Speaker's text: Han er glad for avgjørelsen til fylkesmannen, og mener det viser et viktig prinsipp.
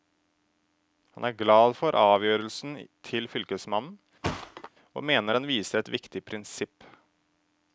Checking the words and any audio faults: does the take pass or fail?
fail